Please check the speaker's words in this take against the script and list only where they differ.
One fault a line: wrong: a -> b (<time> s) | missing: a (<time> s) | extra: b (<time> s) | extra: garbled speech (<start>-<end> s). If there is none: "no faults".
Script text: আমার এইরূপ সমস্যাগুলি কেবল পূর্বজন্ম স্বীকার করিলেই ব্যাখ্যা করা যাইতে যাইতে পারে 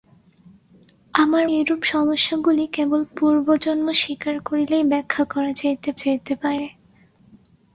no faults